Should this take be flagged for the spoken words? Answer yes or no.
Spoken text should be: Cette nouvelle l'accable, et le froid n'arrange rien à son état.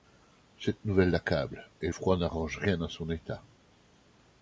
yes